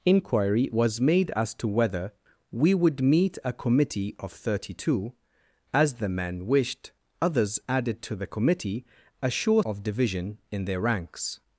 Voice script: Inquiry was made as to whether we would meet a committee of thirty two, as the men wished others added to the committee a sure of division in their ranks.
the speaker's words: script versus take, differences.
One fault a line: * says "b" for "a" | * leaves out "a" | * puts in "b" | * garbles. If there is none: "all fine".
all fine